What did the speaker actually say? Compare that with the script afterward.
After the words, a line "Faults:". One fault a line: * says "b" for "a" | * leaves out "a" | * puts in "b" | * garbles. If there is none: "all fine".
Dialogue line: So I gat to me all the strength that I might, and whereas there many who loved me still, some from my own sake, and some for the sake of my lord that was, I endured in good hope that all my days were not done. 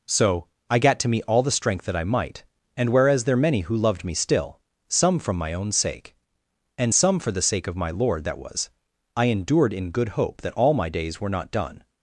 So I gat to me all the strength that I might, and whereas there many who loved me still, some from my own sake, and some for the sake of my lord that was, I endured in good hope that all my days were not done.
Faults:
all fine